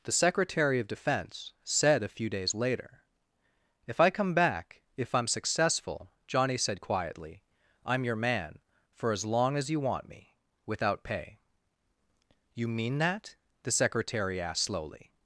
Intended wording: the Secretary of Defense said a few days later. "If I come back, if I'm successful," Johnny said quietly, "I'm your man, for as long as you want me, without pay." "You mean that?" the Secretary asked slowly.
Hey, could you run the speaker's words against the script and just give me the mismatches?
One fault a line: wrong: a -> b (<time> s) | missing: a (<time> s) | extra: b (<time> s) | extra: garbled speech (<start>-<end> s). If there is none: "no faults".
no faults